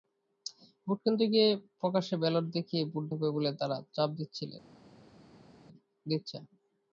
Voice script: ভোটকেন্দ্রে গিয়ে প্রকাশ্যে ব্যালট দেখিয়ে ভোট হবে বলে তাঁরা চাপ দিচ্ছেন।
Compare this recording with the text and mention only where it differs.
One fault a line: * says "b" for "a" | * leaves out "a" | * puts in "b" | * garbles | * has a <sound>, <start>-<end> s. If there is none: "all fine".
all fine